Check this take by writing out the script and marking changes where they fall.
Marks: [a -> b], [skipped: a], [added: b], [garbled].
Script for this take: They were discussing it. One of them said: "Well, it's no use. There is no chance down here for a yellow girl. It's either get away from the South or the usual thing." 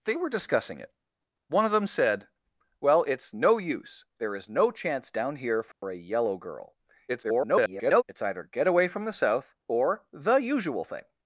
They were discussing it. One of them said: "Well, it's no use. There is no chance down here for a yellow girl. [garbled] It's either get away from the South or the usual thing."